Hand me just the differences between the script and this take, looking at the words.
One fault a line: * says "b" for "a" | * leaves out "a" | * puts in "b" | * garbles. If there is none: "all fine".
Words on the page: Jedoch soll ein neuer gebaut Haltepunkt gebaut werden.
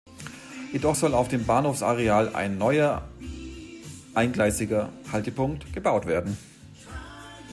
* puts in "auf dem Bahnhofsareal"
* says "eingleisiger" for "gebaut"